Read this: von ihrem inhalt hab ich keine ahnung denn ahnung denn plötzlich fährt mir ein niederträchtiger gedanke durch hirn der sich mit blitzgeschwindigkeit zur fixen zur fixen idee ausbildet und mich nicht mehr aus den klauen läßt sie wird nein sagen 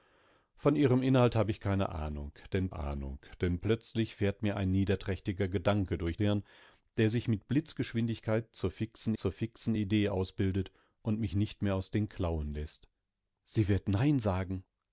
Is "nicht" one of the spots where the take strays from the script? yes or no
no